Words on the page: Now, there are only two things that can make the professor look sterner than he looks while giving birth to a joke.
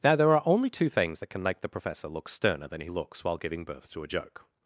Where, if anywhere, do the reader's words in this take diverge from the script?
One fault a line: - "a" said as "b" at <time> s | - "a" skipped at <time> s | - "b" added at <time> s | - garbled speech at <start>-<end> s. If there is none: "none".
none